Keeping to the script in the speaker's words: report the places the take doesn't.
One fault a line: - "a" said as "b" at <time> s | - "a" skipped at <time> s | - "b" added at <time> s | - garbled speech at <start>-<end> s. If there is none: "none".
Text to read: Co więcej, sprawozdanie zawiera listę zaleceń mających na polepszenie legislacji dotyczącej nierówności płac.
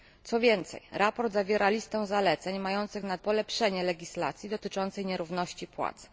none